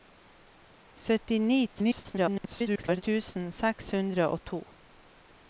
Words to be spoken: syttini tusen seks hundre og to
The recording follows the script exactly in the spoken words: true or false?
false